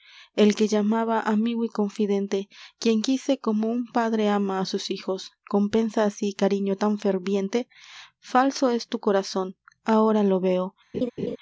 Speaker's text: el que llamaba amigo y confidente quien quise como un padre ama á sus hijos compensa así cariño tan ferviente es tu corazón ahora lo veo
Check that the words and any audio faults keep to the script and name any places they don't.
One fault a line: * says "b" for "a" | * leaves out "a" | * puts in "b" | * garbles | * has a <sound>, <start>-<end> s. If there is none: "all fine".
* puts in "falso"
* has a laugh, 10.9-11.4 s